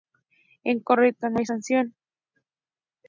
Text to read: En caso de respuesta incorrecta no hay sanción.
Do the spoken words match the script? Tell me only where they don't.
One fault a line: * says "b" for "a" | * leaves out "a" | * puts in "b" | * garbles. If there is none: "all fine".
* leaves out "caso de respuesta"